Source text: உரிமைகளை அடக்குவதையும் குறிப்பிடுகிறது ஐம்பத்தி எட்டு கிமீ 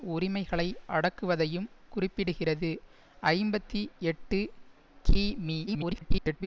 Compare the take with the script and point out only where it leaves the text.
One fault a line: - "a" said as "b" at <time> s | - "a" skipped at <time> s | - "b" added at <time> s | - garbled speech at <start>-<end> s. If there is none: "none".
- garbled speech at 5.7-6.5 s